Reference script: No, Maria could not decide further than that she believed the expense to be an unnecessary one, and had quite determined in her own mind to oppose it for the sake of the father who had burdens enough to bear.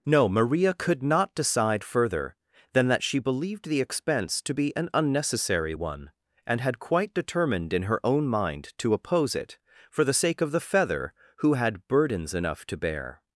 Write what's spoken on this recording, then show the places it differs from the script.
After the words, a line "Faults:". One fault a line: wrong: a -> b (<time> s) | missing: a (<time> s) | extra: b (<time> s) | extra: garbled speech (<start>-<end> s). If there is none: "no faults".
No, Maria could not decide further than that she believed the expense to be an unnecessary one, and had quite determined in her own mind to oppose it for the sake of the feather who had burdens enough to bear.
Faults:
wrong: father -> feather (10.6 s)